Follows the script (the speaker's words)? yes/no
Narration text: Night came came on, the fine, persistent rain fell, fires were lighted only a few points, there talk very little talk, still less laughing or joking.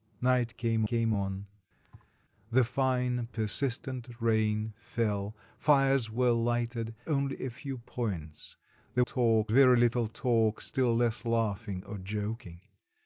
yes